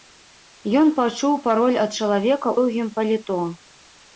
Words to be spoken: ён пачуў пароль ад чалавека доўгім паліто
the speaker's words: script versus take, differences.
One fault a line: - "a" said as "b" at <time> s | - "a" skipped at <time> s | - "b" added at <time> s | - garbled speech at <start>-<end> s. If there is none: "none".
none